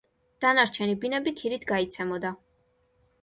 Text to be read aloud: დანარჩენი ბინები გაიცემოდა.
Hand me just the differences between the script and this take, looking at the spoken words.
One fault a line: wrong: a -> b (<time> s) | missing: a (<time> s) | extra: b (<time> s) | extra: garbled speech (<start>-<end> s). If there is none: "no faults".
extra: ქირით (1.4 s)